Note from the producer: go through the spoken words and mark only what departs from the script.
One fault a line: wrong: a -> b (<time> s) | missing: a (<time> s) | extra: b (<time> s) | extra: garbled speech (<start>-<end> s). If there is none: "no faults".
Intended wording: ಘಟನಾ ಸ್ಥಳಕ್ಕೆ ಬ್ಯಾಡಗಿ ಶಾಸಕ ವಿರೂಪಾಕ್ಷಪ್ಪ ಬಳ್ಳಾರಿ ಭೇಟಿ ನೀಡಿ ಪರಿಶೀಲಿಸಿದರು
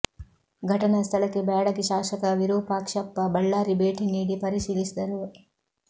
no faults